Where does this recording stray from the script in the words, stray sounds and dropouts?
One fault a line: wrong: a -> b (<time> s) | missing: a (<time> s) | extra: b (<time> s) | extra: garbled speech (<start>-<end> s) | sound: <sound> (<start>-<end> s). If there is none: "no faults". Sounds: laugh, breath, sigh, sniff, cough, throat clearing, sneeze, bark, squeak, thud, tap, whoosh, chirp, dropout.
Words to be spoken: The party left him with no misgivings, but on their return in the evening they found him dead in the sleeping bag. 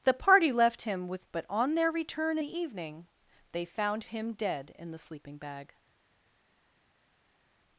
missing: no misgivings (1.3 s)
missing: in (2.4 s)